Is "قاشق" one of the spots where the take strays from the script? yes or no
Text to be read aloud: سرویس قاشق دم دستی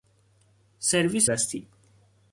yes